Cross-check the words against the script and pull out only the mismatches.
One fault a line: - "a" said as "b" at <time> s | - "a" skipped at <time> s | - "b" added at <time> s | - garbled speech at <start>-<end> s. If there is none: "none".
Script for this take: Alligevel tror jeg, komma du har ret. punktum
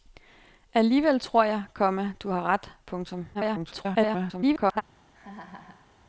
- garbled speech at 3.3-4.8 s